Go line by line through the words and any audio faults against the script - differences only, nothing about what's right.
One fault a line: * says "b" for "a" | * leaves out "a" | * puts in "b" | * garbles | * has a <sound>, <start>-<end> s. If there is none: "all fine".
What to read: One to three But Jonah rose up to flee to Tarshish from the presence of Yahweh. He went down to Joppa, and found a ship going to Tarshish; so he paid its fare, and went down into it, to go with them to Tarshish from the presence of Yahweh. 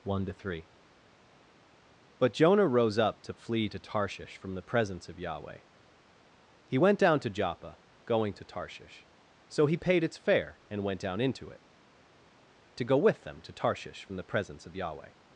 * leaves out "and found a ship"